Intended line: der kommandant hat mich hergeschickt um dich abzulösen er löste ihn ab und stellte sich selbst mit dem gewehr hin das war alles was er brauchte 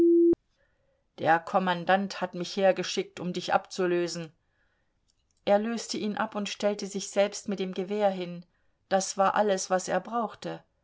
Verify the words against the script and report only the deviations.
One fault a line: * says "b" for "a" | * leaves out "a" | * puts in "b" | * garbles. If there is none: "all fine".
all fine